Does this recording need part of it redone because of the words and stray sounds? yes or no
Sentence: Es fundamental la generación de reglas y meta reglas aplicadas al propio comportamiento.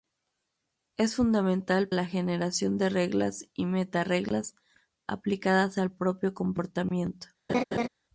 yes